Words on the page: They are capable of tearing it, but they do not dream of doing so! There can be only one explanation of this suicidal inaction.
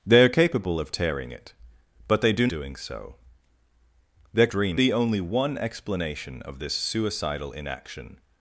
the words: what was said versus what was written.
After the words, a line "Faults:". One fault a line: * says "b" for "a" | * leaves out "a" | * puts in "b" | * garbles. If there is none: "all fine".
They are capable of tearing it, but they do doing so! There dream be only one explanation of this suicidal inaction.
Faults:
* leaves out "not dream of"
* says "dream" for "can"